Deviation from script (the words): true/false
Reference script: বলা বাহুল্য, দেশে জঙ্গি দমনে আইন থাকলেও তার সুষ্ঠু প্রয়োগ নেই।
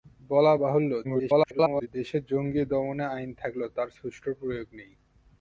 true